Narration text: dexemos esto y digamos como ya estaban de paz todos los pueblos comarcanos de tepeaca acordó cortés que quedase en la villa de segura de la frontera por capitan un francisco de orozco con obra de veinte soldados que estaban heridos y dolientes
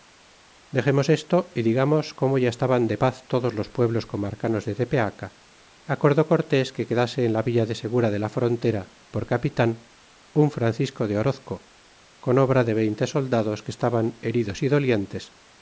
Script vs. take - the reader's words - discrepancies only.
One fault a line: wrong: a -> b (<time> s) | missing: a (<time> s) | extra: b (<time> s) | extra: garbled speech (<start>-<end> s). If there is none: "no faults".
no faults